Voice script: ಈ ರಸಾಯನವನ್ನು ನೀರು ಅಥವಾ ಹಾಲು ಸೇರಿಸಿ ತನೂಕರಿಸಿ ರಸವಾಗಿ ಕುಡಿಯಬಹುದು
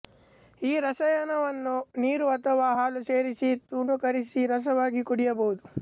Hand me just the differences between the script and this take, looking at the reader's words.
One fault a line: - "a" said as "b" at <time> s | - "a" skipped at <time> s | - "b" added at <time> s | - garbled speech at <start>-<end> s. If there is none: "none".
none